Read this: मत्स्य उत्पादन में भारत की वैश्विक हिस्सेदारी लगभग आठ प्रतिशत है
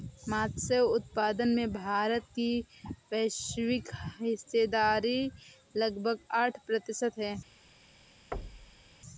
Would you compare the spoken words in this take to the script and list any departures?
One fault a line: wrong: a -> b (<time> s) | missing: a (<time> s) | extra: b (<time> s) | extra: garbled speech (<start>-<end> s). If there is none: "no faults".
no faults